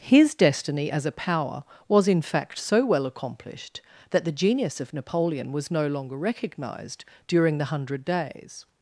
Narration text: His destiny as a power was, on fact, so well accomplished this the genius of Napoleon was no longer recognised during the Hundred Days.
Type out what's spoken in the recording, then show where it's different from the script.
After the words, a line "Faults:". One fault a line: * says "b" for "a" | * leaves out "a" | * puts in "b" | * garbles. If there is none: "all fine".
His destiny as a power was, in fact, so well accomplished that the genius of Napoleon was no longer recognised during the Hundred Days.
Faults:
* says "in" for "on"
* says "that" for "this"